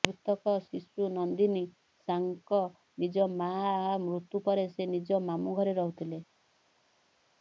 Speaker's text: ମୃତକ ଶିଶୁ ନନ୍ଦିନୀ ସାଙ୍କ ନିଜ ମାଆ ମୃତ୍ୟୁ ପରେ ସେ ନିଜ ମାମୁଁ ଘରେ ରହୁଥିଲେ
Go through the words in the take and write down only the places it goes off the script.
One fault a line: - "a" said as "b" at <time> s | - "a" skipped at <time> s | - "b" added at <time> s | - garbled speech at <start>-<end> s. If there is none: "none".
none